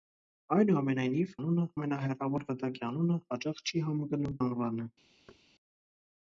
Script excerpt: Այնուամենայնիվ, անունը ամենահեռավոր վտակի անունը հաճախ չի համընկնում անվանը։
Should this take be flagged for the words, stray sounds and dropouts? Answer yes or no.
yes